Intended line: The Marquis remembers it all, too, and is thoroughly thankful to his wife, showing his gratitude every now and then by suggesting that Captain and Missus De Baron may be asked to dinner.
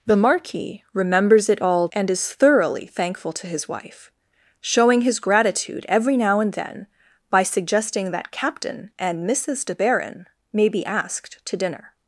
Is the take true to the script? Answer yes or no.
no